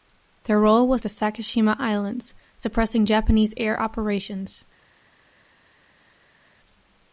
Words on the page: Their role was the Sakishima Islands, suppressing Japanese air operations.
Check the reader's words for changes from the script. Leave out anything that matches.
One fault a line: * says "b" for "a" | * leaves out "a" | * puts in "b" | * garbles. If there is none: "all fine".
all fine